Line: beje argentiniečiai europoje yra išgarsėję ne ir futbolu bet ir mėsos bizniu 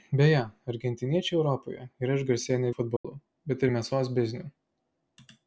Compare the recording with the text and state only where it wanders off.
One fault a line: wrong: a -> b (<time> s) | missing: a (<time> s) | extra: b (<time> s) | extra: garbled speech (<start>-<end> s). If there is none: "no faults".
no faults